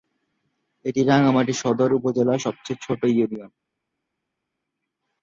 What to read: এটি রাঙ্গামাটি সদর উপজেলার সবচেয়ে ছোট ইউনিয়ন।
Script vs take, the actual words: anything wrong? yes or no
no